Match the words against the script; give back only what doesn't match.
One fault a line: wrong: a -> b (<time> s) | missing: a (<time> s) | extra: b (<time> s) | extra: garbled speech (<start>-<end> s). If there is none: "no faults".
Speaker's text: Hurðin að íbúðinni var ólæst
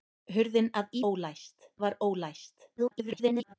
wrong: íbúðinni -> ólæst (1.1 s)
extra: garbled speech (2.8-3.5 s)